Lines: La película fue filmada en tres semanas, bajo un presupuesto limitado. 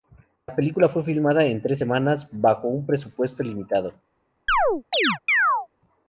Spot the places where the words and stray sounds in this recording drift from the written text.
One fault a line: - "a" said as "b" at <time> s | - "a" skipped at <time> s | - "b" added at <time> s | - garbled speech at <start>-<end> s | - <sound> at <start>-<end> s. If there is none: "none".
- chirp at 4.5-5.7 s